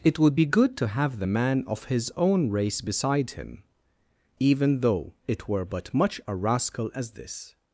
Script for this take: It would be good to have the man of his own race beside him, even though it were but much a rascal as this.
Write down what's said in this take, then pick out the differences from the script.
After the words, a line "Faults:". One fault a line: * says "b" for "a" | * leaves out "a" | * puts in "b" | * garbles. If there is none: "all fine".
It would be good to have the man of his own race beside him, even though it were but much a rascal as this.
Faults:
all fine